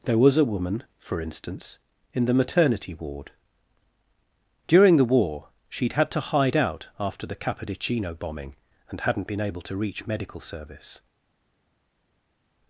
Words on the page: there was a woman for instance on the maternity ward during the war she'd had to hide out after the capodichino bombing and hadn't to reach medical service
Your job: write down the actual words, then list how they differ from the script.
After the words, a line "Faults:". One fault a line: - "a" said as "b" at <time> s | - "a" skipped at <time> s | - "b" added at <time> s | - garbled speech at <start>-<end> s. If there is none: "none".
there was a woman for instance in the maternity ward during the war she'd had to hide out after the capodichino bombing and hadn't been able to reach medical service
Faults:
- "on" said as "in" at 2.1 s
- "been able" added at 9.3 s